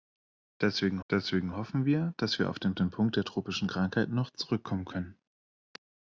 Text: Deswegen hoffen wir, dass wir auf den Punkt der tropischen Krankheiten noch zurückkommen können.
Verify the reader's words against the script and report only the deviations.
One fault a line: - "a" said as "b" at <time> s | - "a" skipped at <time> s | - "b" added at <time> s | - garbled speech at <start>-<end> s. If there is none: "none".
- "deswegen" added at 1.1 s
- "den" added at 2.7 s